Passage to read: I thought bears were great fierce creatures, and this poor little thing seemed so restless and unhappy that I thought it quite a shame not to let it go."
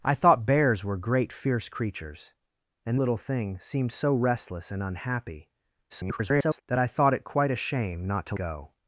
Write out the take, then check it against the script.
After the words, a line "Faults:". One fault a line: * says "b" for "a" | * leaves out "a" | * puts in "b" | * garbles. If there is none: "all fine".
I thought bears were great fierce creatures, and little thing seemed so restless and unhappy [garbled] that I thought it quite a shame not to go."
Faults:
* leaves out "this poor"
* garbles
* leaves out "let it"